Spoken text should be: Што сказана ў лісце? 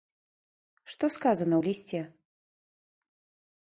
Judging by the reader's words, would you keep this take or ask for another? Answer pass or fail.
pass